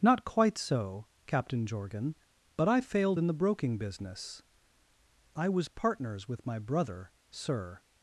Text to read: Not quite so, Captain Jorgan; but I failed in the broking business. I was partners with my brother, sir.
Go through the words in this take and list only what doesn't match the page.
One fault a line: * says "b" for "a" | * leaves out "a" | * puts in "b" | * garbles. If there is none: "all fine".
all fine